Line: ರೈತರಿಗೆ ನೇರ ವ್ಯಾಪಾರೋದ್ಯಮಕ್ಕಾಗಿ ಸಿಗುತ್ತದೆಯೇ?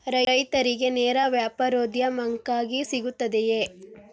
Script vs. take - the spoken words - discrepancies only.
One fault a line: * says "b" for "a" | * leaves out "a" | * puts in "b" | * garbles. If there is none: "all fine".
all fine